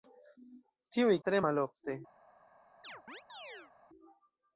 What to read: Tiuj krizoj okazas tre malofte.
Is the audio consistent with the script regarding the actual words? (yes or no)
no